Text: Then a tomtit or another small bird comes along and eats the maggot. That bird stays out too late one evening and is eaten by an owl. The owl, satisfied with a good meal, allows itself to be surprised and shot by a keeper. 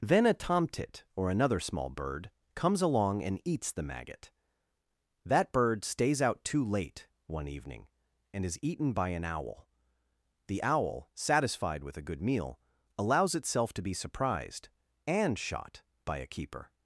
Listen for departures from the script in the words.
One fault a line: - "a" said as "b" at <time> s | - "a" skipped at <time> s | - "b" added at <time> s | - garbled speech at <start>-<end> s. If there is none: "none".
none